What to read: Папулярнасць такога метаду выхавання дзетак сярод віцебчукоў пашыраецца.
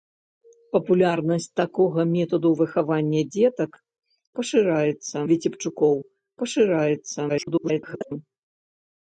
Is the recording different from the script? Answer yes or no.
yes